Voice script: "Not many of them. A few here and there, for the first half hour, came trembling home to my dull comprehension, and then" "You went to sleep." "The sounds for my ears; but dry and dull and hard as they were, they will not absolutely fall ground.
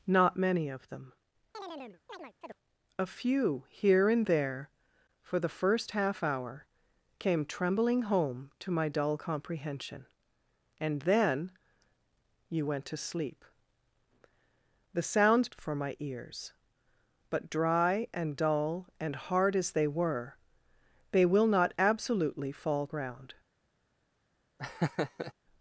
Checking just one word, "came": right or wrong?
right